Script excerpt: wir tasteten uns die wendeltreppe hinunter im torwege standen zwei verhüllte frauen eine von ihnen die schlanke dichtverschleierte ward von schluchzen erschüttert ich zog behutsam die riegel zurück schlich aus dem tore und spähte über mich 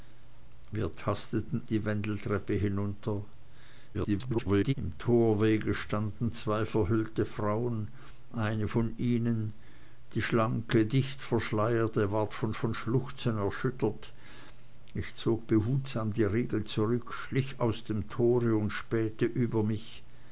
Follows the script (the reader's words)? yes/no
no